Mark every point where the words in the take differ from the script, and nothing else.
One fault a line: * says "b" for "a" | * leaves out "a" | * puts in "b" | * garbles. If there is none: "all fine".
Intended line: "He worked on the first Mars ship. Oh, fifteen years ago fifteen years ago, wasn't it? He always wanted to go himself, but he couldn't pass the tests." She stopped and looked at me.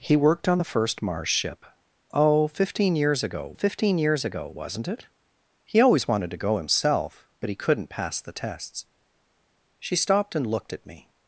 all fine